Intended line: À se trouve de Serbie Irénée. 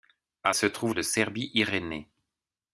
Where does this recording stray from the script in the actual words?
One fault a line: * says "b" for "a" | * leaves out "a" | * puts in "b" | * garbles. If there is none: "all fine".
all fine